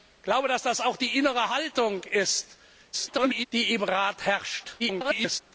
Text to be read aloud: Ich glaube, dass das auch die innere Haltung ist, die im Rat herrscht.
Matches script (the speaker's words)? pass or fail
fail